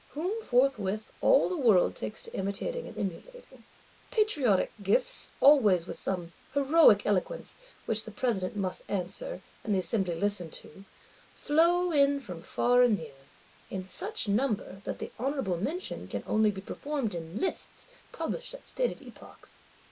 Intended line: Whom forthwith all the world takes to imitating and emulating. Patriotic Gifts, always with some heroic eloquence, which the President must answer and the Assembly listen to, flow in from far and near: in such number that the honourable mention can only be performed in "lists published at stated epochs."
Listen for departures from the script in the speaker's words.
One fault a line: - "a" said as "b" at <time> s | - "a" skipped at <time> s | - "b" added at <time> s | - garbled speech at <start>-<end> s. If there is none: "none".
none